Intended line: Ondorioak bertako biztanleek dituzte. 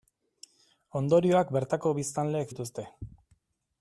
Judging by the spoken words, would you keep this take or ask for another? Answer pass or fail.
pass